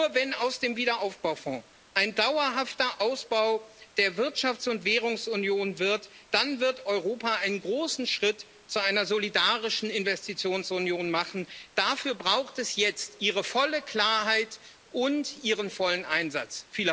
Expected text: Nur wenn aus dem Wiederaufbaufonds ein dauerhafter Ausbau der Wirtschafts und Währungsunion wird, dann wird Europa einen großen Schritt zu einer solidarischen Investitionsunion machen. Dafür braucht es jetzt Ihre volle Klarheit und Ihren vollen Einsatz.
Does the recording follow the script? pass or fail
pass